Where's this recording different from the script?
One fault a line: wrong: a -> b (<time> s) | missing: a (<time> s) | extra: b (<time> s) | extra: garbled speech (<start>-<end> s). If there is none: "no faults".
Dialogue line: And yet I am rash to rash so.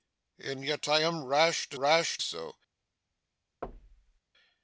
no faults